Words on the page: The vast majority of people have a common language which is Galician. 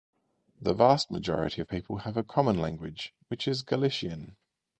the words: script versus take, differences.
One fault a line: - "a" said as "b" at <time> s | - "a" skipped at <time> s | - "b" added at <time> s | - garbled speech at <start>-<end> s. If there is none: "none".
none